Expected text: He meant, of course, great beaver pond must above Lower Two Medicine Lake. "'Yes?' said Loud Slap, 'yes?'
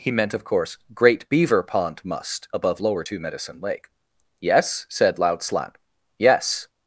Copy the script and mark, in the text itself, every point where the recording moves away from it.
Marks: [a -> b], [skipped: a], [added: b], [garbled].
He meant, of course, great beaver pond must above Lower Two Medicine Lake. "'Yes?' said Loud Slap, 'yes?'